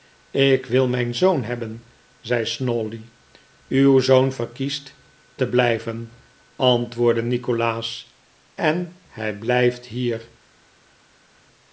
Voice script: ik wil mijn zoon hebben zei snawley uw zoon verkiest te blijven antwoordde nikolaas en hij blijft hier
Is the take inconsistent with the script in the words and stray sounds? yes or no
no